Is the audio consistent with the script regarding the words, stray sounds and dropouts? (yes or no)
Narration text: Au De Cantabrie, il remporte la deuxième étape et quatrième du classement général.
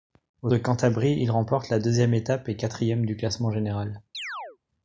no